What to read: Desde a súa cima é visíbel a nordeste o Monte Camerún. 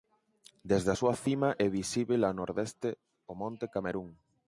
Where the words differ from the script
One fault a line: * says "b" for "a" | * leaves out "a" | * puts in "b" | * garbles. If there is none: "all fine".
all fine